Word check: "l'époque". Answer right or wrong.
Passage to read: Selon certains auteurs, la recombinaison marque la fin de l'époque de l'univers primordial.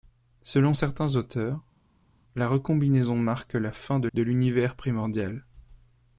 wrong